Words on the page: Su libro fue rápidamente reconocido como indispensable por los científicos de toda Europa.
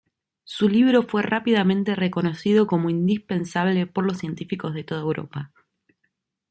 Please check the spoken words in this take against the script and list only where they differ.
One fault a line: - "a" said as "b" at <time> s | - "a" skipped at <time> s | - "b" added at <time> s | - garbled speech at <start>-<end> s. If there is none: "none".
none